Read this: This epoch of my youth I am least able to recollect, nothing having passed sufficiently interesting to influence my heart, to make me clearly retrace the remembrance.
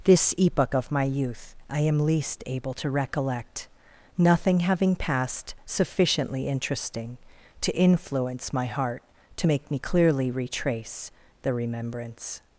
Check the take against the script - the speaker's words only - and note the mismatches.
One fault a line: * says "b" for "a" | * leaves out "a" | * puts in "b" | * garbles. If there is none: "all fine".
all fine